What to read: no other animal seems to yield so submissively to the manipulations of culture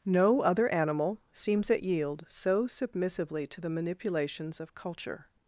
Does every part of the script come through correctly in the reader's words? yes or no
no